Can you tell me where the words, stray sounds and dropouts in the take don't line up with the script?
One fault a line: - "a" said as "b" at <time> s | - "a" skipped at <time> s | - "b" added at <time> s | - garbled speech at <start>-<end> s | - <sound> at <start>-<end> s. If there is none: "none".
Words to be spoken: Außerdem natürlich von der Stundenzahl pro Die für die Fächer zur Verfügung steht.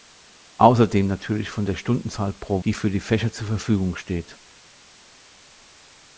none